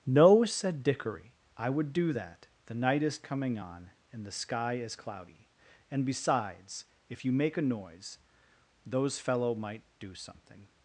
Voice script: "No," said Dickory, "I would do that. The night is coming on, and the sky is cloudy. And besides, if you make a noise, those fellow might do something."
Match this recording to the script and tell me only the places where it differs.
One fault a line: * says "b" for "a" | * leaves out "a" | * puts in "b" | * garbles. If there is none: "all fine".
all fine